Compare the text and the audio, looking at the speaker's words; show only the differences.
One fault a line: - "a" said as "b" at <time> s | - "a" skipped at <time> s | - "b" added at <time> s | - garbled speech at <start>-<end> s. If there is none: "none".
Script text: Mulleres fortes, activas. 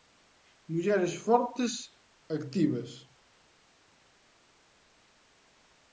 none